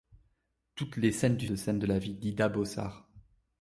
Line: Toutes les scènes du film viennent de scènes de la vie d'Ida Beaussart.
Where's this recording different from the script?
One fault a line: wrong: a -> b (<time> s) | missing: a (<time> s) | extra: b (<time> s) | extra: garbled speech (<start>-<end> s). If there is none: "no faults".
missing: film viennent (1.5 s)